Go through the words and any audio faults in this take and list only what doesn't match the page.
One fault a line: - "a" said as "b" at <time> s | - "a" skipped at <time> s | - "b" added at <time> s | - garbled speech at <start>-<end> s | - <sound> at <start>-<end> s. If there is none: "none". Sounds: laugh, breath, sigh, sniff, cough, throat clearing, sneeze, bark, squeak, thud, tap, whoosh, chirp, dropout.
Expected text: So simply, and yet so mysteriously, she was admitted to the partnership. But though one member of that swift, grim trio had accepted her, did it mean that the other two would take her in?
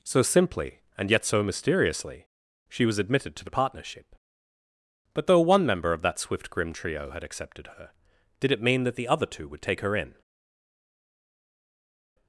none